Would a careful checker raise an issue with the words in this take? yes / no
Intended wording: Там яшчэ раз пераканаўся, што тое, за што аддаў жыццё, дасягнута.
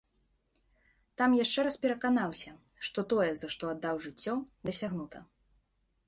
no